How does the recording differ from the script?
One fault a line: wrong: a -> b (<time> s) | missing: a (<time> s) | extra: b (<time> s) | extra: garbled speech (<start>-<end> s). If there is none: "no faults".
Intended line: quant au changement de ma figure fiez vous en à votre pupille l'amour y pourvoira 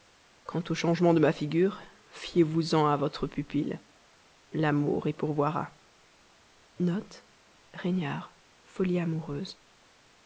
no faults